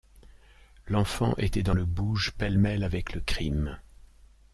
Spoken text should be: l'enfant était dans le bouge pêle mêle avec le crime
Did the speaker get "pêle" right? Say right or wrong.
right